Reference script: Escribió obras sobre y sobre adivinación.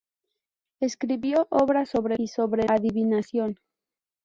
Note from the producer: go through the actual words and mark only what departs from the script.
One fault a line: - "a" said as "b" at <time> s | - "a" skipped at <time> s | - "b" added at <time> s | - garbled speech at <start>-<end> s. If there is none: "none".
none